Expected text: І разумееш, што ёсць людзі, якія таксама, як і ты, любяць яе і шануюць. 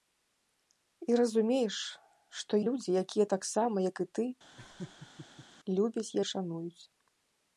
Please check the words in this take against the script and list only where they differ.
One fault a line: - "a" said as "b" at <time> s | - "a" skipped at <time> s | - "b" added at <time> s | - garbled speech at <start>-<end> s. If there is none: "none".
- "ёсць" skipped at 2.5 s
- "яе" skipped at 6.1 s